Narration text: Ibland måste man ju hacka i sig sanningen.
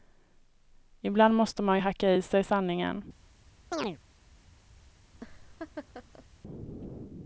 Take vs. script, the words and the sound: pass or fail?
fail